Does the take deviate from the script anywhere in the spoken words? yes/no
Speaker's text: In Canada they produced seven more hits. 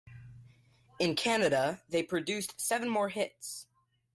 no